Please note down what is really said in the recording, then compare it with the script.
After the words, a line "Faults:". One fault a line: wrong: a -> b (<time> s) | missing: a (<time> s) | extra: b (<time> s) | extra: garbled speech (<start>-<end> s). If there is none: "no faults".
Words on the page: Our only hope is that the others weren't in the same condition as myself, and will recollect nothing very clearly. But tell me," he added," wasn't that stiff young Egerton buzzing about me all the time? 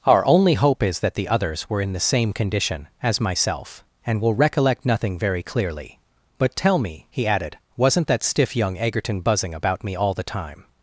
Our only hope is that the others were in the same condition as myself, and will recollect nothing very clearly. But tell me," he added," wasn't that stiff young Egerton buzzing about me all the time?
Faults:
wrong: weren't -> were (1.7 s)